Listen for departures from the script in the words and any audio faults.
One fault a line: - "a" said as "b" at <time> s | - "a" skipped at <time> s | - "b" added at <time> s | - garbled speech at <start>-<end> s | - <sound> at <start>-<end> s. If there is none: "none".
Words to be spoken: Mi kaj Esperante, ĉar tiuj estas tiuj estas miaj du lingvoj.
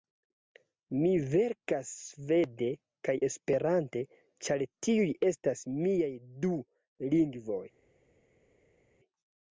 - "verkas svede" added at 1.3 s
- "tiuj estas" skipped at 5.6 s